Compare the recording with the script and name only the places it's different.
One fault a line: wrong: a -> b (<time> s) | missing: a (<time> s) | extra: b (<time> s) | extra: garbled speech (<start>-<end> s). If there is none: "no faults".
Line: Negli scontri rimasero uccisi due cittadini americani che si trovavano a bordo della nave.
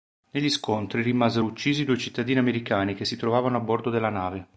no faults